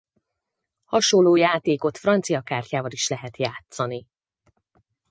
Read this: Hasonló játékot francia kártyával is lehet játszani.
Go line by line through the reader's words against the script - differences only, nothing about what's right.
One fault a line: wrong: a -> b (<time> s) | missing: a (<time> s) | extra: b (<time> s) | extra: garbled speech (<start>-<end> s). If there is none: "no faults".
no faults